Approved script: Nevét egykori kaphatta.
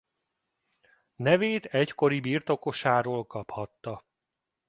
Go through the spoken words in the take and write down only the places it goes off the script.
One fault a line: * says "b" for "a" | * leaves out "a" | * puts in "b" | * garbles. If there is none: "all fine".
* puts in "birtokosáról"